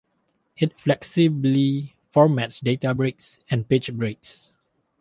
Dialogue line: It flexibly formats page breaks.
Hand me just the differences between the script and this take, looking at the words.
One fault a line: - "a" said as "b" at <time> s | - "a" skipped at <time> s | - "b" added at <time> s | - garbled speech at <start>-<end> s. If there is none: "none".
- "data breaks and" added at 2.6 s